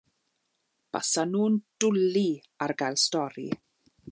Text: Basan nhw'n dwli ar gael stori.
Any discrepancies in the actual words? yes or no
no